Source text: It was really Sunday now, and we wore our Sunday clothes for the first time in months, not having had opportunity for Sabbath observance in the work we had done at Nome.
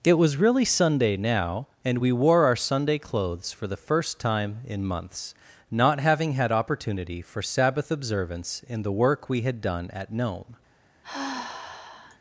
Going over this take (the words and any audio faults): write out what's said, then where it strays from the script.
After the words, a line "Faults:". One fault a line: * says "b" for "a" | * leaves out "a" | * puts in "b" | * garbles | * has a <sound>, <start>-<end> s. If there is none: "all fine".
It was really Sunday now, and we wore our Sunday clothes for the first time in months, not having had opportunity for Sabbath observance in the work we had done at Nome.
Faults:
* has a sigh, 11.0-12.2 s